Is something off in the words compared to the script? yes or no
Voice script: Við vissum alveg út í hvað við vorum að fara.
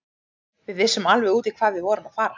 no